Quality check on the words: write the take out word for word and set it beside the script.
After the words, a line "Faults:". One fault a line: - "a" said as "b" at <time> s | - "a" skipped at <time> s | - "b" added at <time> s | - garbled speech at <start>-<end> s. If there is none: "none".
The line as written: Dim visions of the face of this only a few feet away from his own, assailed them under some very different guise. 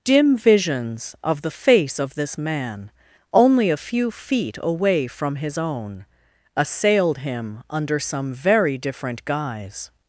Dim visions of the face of this man, only a few feet away from his own, assailed him under some very different guise.
Faults:
- "man" added at 2.4 s
- "them" said as "him" at 7.2 s